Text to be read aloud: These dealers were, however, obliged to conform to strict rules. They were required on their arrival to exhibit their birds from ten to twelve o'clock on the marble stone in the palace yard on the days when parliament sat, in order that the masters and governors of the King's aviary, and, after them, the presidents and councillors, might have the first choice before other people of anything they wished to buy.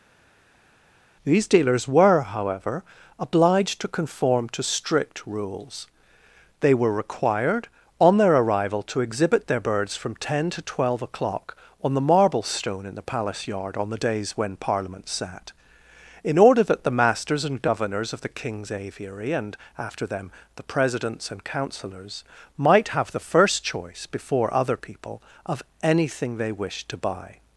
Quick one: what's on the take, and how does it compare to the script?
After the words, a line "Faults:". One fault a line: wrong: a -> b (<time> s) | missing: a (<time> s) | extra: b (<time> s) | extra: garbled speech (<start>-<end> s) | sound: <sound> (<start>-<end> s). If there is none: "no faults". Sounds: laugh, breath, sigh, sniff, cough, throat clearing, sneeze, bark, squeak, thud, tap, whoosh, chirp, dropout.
These dealers were, however, obliged to conform to strict rules. They were required on their arrival to exhibit their birds from ten to twelve o'clock on the marble stone in the palace yard on the days when parliament sat, in order that the masters and governors of the King's aviary, and, after them, the presidents and councillors, might have the first choice before other people of anything they wished to buy.
Faults:
no faults